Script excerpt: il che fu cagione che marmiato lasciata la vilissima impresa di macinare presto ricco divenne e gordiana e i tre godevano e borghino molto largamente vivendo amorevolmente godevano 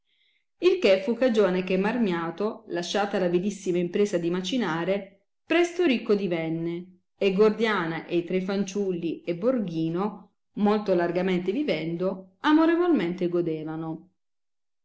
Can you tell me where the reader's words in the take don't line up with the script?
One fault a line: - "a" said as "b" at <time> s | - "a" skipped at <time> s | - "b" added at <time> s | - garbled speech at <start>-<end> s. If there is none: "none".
- "godevano" said as "fanciulli" at 8.4 s